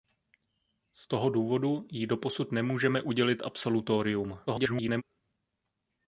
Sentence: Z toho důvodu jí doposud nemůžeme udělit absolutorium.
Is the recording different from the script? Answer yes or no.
yes